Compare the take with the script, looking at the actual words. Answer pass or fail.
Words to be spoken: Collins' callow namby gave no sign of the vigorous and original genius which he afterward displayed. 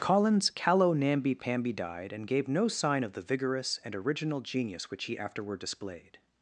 fail